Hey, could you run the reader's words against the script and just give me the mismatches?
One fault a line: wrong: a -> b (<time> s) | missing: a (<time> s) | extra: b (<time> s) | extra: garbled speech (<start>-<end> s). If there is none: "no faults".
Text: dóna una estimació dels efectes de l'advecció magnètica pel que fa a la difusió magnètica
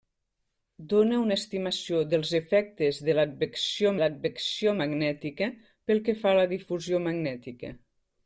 extra: l'advecció (4.0 s)